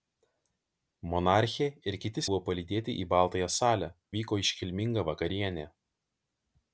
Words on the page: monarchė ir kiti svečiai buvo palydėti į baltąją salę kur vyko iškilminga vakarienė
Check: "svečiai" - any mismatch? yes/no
yes